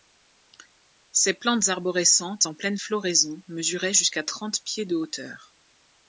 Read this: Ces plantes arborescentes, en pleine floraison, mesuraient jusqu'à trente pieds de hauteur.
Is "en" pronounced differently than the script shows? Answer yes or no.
no